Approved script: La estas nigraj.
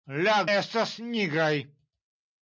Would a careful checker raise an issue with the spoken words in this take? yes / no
no